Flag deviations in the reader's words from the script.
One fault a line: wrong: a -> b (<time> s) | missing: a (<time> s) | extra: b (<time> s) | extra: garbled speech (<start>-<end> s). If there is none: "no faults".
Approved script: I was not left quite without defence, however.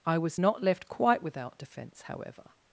no faults